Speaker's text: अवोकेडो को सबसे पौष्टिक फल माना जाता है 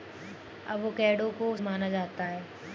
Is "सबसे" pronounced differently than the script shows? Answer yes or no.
yes